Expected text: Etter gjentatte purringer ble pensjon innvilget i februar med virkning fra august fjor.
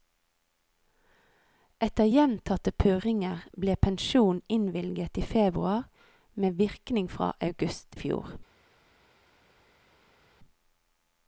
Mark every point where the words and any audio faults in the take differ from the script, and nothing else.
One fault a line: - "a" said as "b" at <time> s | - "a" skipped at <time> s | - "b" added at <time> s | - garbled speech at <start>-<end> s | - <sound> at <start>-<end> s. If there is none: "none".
none